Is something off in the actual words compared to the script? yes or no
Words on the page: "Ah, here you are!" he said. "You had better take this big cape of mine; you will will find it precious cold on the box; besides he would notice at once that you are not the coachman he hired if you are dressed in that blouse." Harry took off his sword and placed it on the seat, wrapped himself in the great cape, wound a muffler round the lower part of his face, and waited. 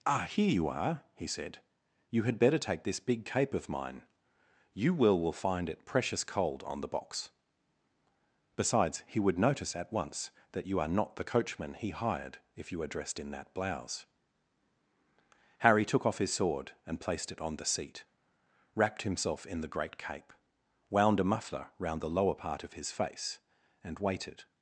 no